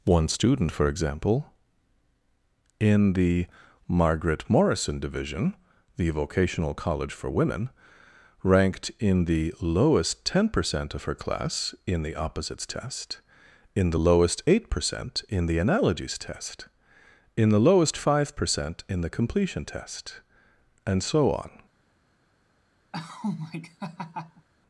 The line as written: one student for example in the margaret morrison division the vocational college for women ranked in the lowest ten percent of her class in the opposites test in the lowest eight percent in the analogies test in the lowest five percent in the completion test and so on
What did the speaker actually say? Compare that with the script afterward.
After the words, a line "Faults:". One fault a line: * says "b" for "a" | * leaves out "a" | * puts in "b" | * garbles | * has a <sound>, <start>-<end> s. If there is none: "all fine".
one student for example in the margaret morrison division the vocational college for women ranked in the lowest ten percent of her class in the opposites test in the lowest eight percent in the analogies test in the lowest five percent in the completion test and so on
Faults:
* has a laugh, 22.9-24.5 s